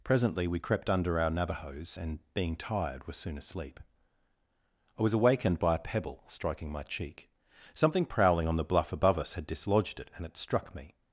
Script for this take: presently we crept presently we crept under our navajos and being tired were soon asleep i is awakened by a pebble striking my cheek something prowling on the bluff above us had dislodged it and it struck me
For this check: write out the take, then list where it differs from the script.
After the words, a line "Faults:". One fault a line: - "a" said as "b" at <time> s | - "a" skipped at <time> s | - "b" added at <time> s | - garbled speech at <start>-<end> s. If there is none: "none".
presently we crept under our navajos and being tired were soon asleep i was awakened by a pebble striking my cheek something prowling on the bluff above us had dislodged it and it struck me
Faults:
- "presently we crept" skipped at 0.9 s
- "is" said as "was" at 5.0 s